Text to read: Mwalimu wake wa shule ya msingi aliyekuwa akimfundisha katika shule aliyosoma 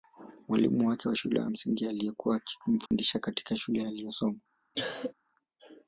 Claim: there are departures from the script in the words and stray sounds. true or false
true